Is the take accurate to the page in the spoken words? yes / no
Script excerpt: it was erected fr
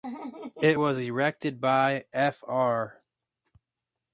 no